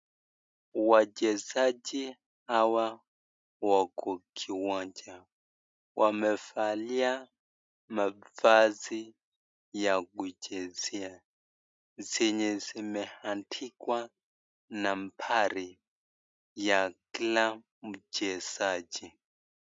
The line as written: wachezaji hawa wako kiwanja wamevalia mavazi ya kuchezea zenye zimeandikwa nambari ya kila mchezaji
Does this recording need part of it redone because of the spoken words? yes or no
no